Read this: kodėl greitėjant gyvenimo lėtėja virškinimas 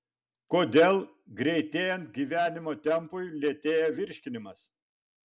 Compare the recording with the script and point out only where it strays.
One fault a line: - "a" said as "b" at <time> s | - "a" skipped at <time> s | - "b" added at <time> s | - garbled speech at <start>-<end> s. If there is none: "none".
- "tempui" added at 2.9 s